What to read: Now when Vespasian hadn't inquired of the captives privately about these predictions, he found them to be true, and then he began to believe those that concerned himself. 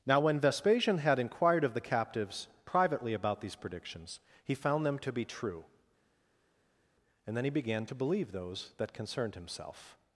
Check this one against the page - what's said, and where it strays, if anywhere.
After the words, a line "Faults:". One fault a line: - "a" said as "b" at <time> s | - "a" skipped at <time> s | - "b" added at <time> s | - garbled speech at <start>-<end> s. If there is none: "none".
Now when Vespasian had inquired of the captives privately about these predictions, he found them to be true, and then he began to believe those that concerned himself.
Faults:
- "hadn't" said as "had" at 1.0 s